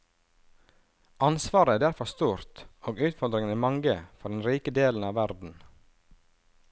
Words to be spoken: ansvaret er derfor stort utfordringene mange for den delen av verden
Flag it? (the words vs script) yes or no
yes